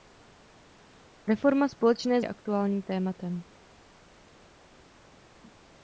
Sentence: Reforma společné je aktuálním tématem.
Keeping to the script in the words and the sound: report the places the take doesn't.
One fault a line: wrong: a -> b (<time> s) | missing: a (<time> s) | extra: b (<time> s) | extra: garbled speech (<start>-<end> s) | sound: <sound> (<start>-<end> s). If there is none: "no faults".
no faults